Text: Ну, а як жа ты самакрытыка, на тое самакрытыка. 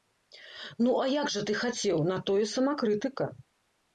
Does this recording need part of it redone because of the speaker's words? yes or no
yes